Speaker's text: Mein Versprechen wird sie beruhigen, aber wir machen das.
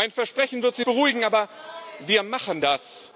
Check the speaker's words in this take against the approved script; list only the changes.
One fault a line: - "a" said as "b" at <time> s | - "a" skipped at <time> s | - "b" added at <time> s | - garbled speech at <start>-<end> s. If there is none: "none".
none